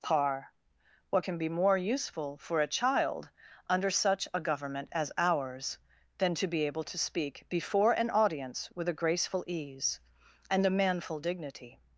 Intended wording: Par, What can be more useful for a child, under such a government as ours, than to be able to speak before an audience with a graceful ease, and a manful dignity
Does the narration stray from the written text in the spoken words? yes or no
no